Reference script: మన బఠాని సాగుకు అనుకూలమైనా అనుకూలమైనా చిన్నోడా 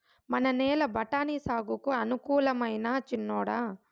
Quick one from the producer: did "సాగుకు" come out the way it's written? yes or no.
yes